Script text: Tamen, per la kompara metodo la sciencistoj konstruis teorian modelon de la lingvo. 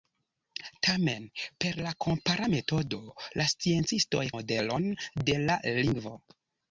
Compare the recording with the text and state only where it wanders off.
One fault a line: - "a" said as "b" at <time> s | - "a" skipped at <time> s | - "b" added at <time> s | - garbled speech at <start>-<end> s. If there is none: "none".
- "konstruis teorian" skipped at 4.2 s